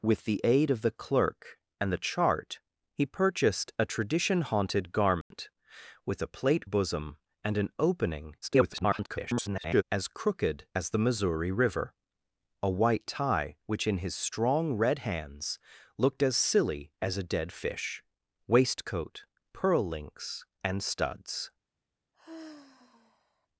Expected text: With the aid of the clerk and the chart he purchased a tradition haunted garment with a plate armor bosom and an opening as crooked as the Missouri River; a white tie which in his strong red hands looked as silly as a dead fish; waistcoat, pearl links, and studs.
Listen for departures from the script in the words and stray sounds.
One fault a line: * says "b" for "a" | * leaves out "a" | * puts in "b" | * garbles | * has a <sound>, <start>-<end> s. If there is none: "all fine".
* has a dropout, 5.2-5.3 s
* leaves out "armor"
* garbles
* has a sigh, 22.1-23.5 s